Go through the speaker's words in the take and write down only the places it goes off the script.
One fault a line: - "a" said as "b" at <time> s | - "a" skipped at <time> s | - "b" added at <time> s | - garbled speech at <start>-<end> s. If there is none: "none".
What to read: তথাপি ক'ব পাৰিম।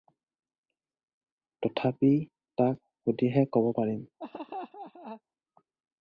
- "তাক সুধিহে" added at 2.6 s